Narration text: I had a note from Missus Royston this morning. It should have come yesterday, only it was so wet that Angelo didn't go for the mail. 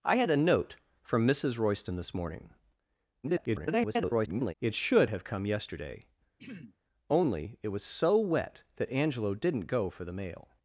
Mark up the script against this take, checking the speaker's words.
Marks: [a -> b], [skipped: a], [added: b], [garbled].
I had a note from Missus Royston this morning. [garbled] It should have come yesterday, only it was so wet that Angelo didn't go for the mail.